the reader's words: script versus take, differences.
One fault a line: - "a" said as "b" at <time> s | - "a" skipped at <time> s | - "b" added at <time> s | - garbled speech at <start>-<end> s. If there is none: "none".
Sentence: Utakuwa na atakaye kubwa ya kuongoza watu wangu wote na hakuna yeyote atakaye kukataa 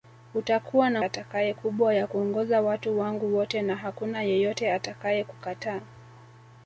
none